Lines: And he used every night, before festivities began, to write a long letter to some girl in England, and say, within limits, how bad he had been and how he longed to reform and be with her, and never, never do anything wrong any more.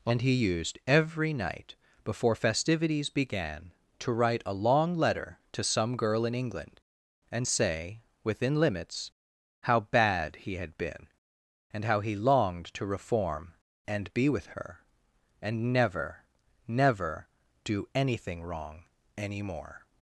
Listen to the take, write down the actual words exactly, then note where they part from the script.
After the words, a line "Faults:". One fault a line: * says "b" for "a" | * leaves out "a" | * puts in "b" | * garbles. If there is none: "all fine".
And he used every night, before festivities began, to write a long letter to some girl in England, and say, within limits, how bad he had been and how he longed to reform and be with her, and never, never do anything wrong any more.
Faults:
all fine